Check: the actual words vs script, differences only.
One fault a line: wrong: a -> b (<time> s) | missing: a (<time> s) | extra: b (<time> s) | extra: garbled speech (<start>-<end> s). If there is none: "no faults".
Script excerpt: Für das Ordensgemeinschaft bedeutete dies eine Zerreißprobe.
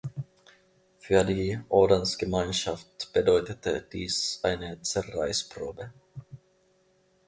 wrong: das -> die (1.2 s)